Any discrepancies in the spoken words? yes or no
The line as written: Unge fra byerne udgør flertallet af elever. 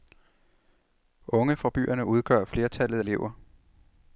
yes